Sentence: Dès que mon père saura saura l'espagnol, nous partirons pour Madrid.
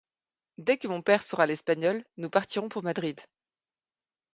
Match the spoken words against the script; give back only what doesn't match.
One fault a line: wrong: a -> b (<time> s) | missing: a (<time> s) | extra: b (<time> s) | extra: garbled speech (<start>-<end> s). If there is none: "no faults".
missing: saura (1.4 s)